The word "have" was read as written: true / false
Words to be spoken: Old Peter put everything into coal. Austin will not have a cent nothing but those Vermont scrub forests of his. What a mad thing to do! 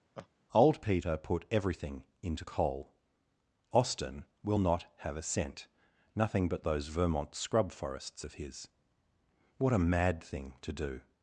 true